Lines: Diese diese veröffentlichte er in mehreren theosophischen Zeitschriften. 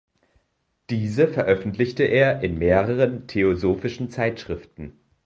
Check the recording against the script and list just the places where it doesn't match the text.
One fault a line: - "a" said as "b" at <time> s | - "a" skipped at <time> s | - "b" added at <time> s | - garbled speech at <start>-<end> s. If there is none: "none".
- "diese" skipped at 1.3 s